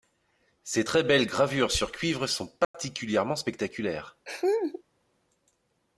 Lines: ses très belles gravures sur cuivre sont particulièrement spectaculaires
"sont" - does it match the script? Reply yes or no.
yes